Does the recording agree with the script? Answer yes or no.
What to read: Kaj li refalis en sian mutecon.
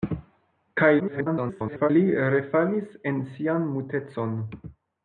no